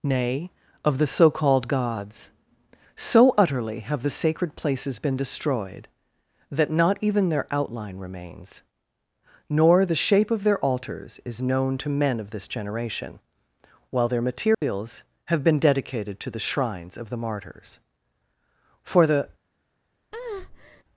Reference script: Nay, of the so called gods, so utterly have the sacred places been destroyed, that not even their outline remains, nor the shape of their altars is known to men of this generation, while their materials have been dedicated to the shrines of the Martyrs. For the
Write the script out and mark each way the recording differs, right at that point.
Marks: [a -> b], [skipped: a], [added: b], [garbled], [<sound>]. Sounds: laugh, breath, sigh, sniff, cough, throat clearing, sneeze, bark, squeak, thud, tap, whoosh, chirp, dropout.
Nay, of the so called gods, so utterly have the sacred places been destroyed, that not even their outline remains, nor the shape of their altars is known to men of this generation, while their materials [dropout] have been dedicated to the shrines of the Martyrs. For the [breath]